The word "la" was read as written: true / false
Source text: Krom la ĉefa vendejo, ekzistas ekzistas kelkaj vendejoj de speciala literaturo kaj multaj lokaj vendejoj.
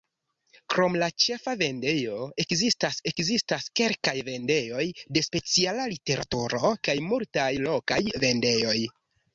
true